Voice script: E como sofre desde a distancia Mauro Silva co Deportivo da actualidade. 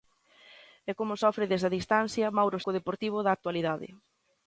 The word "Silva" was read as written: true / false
false